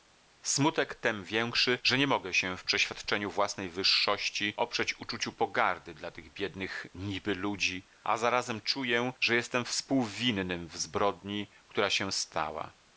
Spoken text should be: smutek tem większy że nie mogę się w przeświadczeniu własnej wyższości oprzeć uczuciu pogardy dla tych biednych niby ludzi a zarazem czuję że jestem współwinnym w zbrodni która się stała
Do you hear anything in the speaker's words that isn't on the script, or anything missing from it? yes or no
no